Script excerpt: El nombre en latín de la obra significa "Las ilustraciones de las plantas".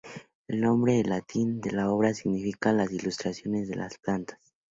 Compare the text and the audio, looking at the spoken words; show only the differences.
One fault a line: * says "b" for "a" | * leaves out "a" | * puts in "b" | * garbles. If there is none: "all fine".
all fine